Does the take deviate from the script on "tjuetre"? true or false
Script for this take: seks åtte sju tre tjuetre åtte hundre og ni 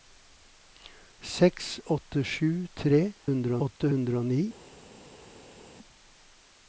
true